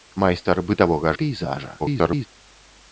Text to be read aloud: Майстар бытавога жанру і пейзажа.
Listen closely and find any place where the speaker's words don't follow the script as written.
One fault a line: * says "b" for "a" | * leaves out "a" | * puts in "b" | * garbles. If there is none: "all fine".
* leaves out "жанру"
* garbles